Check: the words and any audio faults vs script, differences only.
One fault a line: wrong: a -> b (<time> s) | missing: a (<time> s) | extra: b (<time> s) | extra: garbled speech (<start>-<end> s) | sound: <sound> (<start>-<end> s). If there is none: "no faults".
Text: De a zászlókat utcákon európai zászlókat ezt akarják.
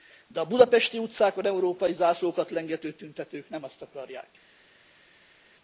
wrong: zászlókat -> budapesti (0.5 s)
extra: lengető tüntetők nem (2.5 s)